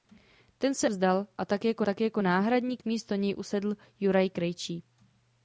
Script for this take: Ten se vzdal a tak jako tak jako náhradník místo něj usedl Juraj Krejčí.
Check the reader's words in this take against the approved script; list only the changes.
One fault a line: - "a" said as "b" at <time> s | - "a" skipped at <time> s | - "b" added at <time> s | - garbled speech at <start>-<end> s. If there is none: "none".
none